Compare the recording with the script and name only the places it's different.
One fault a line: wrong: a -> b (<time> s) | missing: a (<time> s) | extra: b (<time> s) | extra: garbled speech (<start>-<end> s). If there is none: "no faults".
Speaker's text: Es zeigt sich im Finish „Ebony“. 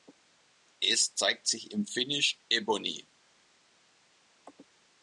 no faults